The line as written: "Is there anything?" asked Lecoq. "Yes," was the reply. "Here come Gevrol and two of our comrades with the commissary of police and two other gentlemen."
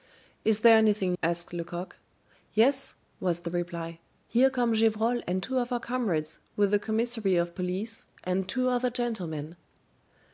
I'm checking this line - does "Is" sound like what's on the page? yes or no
yes